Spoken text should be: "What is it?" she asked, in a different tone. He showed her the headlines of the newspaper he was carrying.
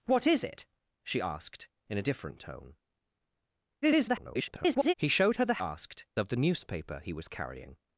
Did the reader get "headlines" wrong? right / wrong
wrong